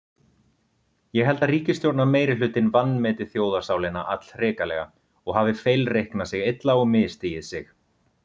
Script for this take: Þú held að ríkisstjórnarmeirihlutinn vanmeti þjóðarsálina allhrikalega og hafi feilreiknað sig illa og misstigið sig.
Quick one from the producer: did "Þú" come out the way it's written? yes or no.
no